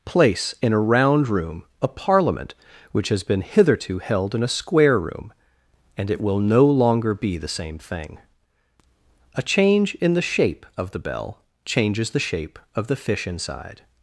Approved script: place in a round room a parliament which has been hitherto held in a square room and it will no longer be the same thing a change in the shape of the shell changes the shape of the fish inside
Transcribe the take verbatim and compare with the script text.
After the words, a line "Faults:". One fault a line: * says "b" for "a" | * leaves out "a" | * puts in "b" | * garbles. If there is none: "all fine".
place in a round room a parliament which has been hitherto held in a square room and it will no longer be the same thing a change in the shape of the bell changes the shape of the fish inside
Faults:
* says "bell" for "shell"